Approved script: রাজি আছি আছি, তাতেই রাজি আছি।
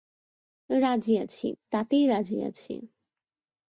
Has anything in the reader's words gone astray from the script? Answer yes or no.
yes